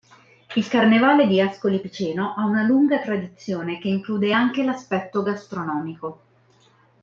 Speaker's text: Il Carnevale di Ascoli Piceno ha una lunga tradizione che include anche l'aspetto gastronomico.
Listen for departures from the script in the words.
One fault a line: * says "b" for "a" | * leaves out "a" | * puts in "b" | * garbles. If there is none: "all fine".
all fine